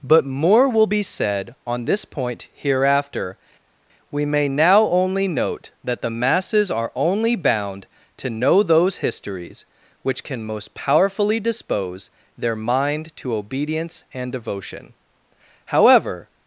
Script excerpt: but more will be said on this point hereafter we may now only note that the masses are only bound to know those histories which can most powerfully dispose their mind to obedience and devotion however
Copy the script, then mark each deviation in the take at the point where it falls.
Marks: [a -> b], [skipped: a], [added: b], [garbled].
but more will be said on this point hereafter we may now only note that the masses are only bound to know those histories which can most powerfully dispose their mind to obedience and devotion however